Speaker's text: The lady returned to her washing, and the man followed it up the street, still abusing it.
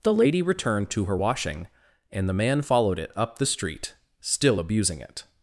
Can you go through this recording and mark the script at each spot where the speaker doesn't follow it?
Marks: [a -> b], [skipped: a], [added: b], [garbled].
The lady returned to her washing, and the man followed it up the street, still abusing it.